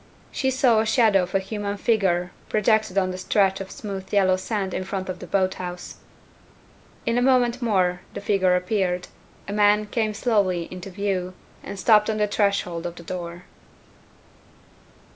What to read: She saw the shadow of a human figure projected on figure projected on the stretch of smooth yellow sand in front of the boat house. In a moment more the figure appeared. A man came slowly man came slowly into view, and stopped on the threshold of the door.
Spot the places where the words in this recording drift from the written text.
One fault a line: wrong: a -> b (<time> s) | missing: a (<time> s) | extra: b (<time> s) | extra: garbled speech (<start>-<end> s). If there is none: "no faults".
missing: figure projected on (3.1 s)
missing: man came slowly (10.7 s)